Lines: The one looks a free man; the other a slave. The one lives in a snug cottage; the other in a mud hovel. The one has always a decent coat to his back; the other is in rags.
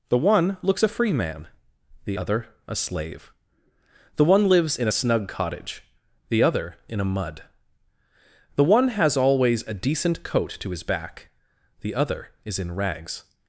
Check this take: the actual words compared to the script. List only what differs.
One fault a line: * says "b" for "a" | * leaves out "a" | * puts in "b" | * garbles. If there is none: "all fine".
* leaves out "hovel"